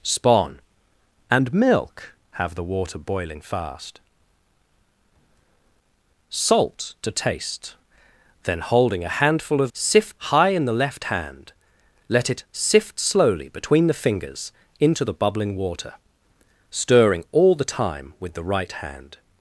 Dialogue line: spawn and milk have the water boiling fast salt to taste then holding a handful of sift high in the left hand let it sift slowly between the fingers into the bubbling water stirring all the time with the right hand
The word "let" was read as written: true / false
true